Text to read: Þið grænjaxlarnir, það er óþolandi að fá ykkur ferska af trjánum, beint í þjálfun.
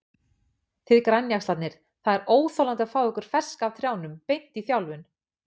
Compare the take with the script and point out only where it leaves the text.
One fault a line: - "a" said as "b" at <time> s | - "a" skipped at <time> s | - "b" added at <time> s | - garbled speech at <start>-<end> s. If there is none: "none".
none